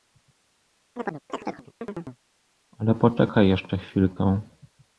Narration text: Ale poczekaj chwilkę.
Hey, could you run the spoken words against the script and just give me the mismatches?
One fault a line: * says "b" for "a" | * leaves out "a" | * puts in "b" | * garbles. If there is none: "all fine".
* puts in "jeszcze"